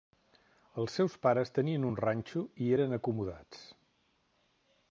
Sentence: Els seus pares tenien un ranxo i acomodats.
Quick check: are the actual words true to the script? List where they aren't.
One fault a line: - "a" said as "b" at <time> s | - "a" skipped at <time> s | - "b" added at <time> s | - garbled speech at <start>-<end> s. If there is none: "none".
- "eren" added at 2.8 s